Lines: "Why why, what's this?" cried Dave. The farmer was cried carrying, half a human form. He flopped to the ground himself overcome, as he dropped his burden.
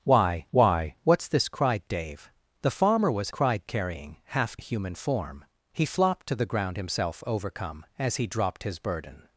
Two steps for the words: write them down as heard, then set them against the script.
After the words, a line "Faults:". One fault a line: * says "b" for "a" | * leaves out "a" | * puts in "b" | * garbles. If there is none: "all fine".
"Why why, what's this?" cried Dave. The farmer was cried carrying, half a human form. He flopped to the ground himself overcome, as he dropped his burden.
Faults:
all fine